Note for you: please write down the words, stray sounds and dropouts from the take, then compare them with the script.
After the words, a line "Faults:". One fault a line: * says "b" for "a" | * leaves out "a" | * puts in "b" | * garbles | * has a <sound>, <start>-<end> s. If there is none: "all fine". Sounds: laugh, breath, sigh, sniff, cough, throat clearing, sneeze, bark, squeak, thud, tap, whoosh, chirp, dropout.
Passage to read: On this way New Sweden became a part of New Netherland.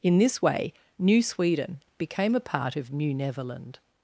In this way New Sweden became a part of New Netherland.
Faults:
* says "In" for "On"